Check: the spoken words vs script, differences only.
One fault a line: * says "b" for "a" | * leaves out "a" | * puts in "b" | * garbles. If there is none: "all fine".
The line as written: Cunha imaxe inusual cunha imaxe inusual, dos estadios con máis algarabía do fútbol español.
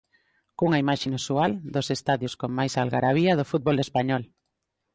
* leaves out "cunha imaxe inusual"